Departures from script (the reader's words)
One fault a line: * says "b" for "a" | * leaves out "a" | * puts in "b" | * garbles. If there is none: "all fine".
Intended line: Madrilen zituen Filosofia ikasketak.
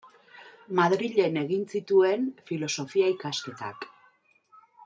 * puts in "egin"